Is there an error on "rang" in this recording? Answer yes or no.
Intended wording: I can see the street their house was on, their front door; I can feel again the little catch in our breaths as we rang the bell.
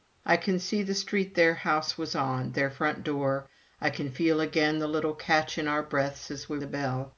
yes